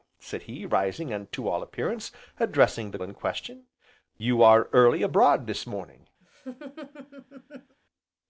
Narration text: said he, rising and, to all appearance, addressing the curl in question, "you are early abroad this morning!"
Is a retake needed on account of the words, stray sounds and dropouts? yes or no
yes